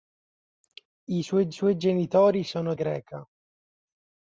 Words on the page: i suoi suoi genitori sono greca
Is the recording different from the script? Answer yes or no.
no